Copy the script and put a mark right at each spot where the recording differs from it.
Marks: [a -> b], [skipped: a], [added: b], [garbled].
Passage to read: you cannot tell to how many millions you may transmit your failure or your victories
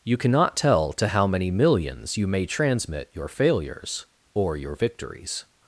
you cannot tell to how many millions you may transmit your [failure -> failures] or your victories